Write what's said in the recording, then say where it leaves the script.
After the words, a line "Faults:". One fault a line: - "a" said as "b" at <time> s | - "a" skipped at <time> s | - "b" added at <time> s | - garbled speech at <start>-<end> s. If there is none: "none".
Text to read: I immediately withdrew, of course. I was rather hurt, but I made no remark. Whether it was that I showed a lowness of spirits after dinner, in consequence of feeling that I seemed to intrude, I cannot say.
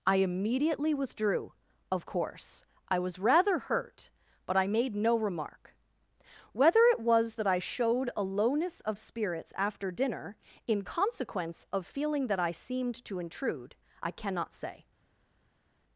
I immediately withdrew, of course. I was rather hurt, but I made no remark. Whether it was that I showed a lowness of spirits after dinner, in consequence of feeling that I seemed to intrude, I cannot say.
Faults:
none